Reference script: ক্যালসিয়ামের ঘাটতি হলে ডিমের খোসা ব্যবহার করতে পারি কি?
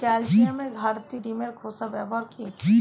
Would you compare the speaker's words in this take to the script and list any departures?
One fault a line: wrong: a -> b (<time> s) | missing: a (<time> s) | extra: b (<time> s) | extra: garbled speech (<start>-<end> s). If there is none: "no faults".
missing: হলে (1.2 s)
missing: করতে পারি (2.2 s)